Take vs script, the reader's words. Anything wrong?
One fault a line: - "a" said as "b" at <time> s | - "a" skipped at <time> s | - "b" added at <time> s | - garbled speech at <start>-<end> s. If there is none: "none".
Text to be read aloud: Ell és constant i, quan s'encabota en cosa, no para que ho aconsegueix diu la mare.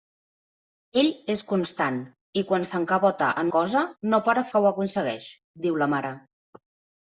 none